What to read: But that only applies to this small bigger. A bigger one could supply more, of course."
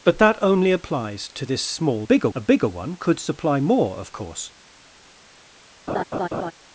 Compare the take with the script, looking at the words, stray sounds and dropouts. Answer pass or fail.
fail